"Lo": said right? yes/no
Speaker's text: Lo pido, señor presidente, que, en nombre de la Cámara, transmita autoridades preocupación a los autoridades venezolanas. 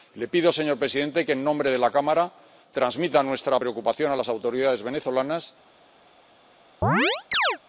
no